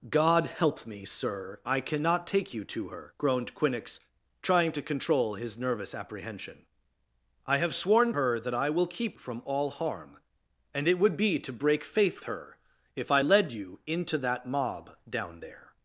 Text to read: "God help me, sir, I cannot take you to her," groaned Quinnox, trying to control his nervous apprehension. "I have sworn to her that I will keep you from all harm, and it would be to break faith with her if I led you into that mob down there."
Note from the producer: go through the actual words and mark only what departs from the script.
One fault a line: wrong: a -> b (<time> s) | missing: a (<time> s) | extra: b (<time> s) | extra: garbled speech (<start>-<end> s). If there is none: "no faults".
missing: to (8.1 s)
missing: you (9.2 s)
missing: with (12.2 s)